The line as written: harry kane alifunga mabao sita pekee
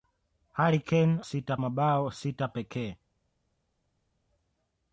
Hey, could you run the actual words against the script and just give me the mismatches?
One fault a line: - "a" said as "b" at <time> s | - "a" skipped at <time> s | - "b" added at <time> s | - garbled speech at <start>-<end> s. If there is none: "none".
- "alifunga" said as "sita" at 1.2 s